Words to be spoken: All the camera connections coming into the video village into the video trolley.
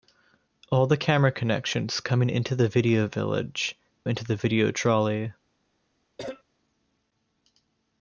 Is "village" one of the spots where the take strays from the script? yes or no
no